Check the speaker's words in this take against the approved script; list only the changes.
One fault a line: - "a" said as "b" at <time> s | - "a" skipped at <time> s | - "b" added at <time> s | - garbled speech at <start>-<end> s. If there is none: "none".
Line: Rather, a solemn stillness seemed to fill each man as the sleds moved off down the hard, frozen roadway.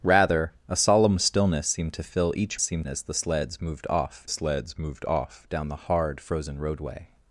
- "man" said as "seemed" at 2.6 s
- "sleds moved off" added at 4.3 s